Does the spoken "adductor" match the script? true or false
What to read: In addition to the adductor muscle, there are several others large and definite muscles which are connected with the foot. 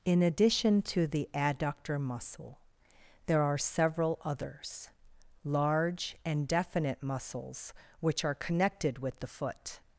true